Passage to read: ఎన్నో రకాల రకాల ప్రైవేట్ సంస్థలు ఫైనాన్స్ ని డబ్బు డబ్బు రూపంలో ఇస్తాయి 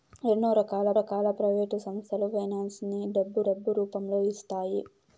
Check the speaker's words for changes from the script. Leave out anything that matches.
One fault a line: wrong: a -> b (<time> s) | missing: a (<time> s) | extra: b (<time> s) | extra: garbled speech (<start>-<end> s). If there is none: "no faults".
no faults